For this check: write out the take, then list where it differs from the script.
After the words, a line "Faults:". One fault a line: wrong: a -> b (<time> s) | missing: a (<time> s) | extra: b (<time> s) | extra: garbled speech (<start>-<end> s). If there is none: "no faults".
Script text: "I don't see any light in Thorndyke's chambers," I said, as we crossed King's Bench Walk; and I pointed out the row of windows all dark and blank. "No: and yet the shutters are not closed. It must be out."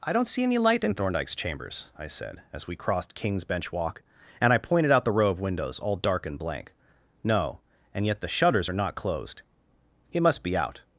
"I don't see any light in Thorndyke's chambers," I said, as we crossed King's Bench Walk; and I pointed out the row of windows all dark and blank. "No: and yet the shutters are not closed. It must be out."
Faults:
no faults